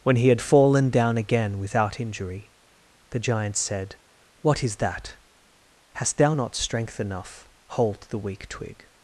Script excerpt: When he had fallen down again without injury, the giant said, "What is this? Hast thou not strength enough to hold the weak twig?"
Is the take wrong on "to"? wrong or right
wrong